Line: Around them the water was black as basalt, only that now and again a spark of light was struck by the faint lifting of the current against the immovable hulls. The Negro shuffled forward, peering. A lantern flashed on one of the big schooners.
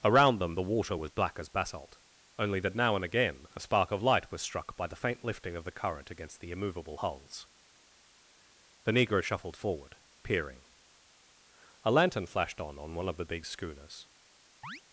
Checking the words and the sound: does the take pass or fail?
fail